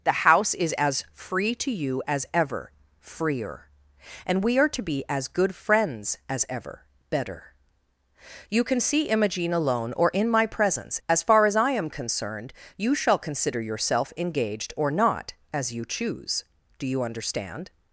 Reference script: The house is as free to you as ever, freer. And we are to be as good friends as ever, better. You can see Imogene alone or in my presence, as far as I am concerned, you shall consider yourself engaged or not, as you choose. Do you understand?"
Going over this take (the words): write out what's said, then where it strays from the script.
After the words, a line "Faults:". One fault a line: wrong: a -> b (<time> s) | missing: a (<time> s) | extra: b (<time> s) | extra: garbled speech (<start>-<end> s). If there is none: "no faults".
The house is as free to you as ever, freer. And we are to be as good friends as ever, better. You can see Imogene alone or in my presence, as far as I am concerned, you shall consider yourself engaged or not, as you choose. Do you understand?"
Faults:
no faults